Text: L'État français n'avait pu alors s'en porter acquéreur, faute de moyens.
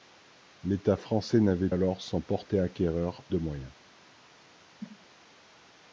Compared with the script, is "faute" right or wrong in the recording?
wrong